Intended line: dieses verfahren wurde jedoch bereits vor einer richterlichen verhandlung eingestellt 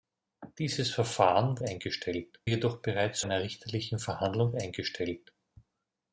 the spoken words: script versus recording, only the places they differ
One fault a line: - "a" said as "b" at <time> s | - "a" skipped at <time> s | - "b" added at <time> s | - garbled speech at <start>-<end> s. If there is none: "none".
- "wurde" said as "eingestellt" at 1.6 s
- "vor" skipped at 3.2 s